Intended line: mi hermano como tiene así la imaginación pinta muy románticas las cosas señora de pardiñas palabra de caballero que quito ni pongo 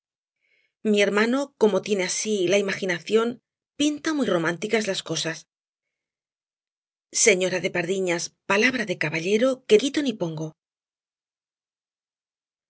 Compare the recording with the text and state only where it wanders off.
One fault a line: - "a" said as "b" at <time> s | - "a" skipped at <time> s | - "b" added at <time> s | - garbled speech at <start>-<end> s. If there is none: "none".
none